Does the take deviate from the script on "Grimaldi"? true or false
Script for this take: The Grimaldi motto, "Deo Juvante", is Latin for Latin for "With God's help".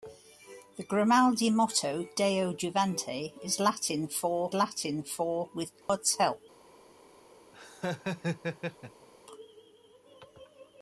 false